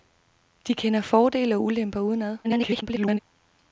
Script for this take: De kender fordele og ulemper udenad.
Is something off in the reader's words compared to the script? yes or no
yes